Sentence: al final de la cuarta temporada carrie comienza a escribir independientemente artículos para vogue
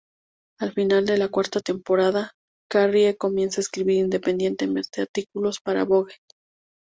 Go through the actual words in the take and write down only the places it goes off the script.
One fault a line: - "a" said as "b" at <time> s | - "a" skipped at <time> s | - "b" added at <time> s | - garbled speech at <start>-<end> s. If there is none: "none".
none